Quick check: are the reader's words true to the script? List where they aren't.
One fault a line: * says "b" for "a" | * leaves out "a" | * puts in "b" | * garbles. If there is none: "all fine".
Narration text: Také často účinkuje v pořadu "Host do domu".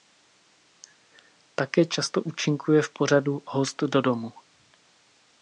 all fine